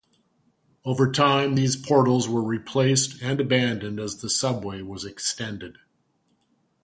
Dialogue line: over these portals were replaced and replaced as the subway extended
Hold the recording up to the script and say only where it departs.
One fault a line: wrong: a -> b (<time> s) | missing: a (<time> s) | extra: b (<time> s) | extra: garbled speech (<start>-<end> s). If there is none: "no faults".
extra: time (1.1 s)
wrong: replaced -> abandoned (3.4 s)
extra: was (4.8 s)